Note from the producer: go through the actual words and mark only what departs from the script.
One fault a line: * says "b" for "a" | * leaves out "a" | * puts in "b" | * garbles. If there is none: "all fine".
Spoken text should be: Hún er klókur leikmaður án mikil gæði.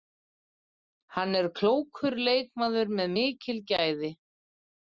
* says "Hann" for "Hún"
* says "með" for "án"